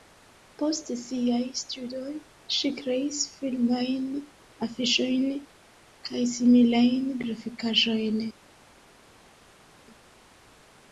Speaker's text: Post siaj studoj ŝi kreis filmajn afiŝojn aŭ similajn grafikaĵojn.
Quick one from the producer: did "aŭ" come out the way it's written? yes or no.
no